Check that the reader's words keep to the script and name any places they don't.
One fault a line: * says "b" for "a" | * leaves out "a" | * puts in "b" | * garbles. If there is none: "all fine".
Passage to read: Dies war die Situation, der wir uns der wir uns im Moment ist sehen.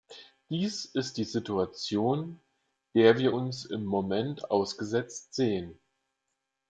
* says "ist" for "war"
* leaves out "der wir uns"
* says "ausgesetzt" for "ist"